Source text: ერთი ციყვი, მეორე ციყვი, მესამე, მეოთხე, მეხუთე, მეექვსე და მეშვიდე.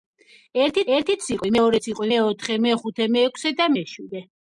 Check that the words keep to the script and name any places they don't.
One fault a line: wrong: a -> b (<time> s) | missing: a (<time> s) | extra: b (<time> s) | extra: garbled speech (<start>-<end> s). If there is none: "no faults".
extra: ერთი (1.0 s)
missing: მესამე (2.1 s)